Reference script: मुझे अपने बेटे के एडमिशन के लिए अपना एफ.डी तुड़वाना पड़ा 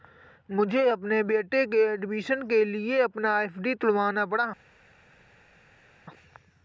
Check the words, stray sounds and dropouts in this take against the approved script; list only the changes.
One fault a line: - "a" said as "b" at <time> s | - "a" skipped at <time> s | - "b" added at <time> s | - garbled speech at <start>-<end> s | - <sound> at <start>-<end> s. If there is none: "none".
none